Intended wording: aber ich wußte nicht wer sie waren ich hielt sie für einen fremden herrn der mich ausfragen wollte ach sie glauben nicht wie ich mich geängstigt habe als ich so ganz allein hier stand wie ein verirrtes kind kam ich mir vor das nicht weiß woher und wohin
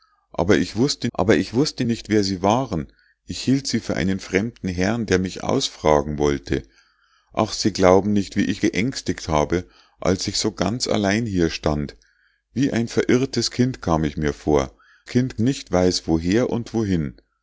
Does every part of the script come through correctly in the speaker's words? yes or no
no